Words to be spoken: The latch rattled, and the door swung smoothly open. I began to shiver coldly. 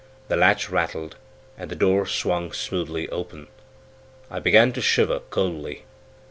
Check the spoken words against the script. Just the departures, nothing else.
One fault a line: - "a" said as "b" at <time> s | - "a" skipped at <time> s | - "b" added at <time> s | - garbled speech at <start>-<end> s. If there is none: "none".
none